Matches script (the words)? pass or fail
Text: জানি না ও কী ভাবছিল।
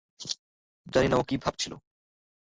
pass